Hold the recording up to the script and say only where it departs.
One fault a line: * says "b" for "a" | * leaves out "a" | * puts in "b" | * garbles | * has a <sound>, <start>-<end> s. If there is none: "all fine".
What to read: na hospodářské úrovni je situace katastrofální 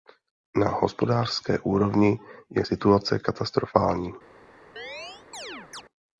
* has a chirp, 4.8-5.8 s